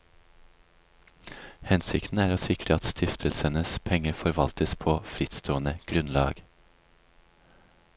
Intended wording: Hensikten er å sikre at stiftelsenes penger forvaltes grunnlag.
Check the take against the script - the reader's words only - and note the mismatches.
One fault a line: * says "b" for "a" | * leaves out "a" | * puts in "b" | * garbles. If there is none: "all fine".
* puts in "på frittstående"